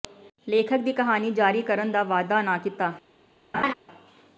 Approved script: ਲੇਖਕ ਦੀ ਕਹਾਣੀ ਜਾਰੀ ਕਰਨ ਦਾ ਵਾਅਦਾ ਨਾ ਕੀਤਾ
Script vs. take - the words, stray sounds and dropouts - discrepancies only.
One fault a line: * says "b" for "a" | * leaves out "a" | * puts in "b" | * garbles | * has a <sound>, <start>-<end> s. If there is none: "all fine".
* has a laugh, 3.5-3.7 s